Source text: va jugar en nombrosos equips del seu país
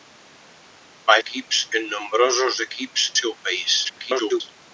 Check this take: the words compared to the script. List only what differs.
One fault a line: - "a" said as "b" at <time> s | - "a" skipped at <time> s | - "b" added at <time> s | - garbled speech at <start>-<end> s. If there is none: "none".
- "jugar" said as "equips" at 1.2 s
- "del" skipped at 3.1 s
- garbled speech at 3.8-4.4 s